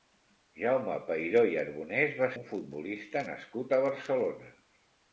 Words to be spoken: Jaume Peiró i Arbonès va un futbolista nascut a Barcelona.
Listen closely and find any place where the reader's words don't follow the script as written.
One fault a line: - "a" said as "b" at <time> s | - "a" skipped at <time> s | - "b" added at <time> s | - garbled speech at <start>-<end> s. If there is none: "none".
none